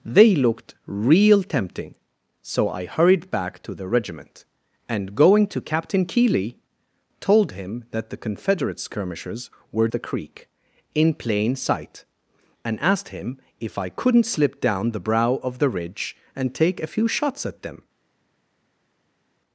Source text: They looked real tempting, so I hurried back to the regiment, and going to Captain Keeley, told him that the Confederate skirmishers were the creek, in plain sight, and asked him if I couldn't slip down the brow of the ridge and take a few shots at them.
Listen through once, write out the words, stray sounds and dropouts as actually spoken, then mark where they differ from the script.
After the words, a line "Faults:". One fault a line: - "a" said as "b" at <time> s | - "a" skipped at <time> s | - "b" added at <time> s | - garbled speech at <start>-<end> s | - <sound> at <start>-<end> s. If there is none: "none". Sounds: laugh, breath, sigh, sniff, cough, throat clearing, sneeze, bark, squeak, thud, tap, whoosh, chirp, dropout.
They looked real tempting, so I hurried back to the regiment, and going to Captain Keeley, told him that the Confederate skirmishers were the creek, in plain sight, and asked him if I couldn't slip down the brow of the ridge and take a few shots at them.
Faults:
none